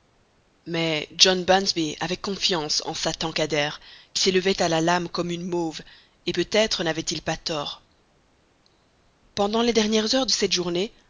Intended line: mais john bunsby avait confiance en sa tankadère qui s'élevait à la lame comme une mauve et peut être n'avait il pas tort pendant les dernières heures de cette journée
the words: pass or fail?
pass